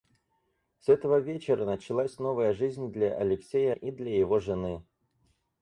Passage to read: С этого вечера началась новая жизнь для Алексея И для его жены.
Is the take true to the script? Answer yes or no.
yes